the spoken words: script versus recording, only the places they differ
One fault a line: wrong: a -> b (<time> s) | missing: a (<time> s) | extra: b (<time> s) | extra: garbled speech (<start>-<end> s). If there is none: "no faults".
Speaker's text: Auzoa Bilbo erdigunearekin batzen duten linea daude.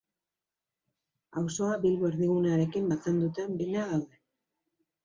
no faults